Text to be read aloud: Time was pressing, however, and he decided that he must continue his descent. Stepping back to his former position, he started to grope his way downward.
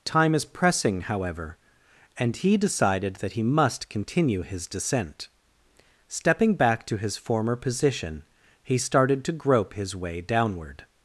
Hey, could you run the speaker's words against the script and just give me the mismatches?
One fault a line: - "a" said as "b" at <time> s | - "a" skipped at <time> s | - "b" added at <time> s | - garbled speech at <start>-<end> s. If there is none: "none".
- "was" said as "is" at 0.3 s